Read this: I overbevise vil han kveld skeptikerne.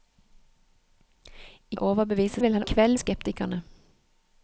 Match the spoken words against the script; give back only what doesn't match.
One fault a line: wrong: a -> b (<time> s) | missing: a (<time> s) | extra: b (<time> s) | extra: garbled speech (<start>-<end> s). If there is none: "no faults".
no faults